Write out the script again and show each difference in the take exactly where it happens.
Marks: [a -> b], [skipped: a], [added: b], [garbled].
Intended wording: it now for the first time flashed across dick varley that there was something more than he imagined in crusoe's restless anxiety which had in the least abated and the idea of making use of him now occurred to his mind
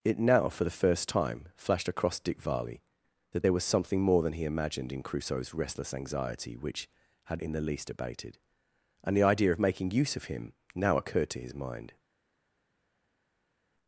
it now for the first time flashed across dick varley that there was something more than he imagined in crusoe's restless anxiety which had in the least abated and the idea of making use of him now occurred to his mind